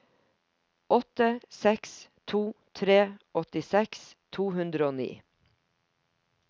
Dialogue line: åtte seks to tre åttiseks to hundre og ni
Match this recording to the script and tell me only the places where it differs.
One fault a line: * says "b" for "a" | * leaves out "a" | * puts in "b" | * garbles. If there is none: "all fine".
all fine